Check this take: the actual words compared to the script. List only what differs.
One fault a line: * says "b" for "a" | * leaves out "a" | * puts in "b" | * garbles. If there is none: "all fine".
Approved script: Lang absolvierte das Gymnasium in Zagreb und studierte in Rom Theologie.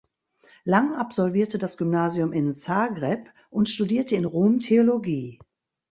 all fine